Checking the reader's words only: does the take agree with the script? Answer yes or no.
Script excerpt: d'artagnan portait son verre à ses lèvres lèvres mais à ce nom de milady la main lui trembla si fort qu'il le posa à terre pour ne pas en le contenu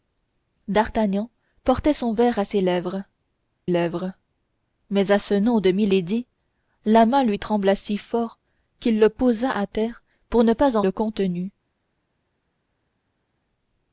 yes